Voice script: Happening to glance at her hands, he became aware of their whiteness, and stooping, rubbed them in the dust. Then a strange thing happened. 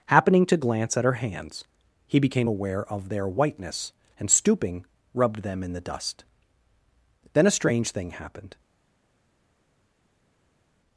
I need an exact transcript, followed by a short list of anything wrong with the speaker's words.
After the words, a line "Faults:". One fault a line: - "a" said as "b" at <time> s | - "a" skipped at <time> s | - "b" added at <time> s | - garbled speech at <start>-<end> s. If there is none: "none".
Happening to glance at her hands, he became aware of their whiteness, and stooping, rubbed them in the dust. Then a strange thing happened.
Faults:
none